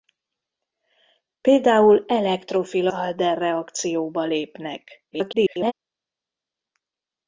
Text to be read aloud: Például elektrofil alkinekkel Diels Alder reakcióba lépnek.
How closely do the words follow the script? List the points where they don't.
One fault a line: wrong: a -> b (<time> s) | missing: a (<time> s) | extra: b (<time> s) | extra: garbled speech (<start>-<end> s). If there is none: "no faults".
missing: alkinekkel Diels (2.9 s)
extra: garbled speech (5.1-5.7 s)